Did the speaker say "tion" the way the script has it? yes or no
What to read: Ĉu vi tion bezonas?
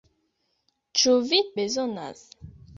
no